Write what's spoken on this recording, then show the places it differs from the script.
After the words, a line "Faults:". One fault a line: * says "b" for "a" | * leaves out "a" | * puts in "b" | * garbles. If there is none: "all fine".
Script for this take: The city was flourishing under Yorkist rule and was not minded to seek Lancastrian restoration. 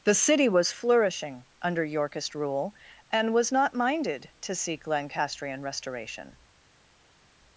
The city was flourishing under Yorkist rule and was not minded to seek Lancastrian restoration.
Faults:
all fine